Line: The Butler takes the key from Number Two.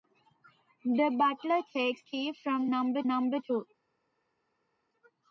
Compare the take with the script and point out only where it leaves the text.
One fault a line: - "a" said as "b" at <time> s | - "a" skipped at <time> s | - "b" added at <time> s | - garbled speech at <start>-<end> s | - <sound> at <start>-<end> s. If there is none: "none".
- "the" skipped at 2.0 s
- "Number" added at 3.1 s